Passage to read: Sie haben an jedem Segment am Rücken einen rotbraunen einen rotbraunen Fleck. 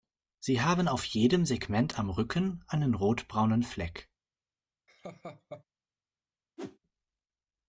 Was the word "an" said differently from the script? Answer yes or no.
yes